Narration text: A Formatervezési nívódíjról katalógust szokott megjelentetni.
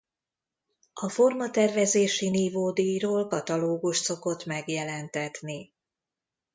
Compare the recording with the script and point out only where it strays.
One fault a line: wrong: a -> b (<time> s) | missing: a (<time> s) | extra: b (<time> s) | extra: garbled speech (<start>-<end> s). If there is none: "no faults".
no faults